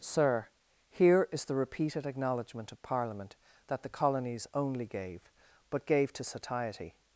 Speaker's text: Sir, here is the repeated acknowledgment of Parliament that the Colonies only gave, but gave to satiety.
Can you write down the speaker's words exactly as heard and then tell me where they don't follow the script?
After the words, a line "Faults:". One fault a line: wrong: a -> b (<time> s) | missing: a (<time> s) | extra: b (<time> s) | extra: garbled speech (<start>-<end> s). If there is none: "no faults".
Sir, here is the repeated acknowledgment of Parliament that the Colonies only gave, but gave to satiety.
Faults:
no faults